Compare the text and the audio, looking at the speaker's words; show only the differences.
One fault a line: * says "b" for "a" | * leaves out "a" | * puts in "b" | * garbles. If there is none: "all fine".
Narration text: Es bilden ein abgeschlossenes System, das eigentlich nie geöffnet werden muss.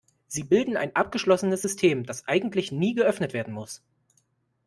* says "Sie" for "Es"